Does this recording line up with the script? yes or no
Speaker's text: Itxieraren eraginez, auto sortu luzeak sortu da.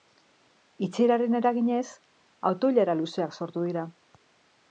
no